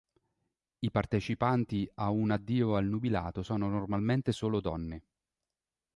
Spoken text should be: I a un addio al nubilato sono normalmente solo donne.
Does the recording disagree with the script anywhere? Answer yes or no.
yes